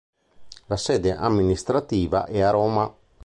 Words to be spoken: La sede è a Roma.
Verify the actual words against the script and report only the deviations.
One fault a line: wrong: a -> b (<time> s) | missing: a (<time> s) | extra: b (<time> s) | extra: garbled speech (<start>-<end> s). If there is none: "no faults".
extra: amministrativa (1.1 s)